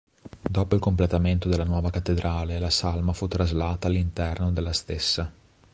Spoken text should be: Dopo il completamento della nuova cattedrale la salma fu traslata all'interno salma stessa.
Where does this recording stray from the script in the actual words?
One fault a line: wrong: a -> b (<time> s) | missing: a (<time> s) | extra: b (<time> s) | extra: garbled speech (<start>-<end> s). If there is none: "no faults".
wrong: salma -> della (4.5 s)